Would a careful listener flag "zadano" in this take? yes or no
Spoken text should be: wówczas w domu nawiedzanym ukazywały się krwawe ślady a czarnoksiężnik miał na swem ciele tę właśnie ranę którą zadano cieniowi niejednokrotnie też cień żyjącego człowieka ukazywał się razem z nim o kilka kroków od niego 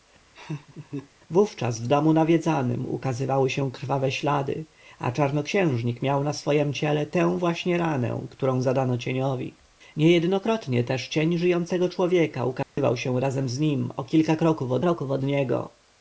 no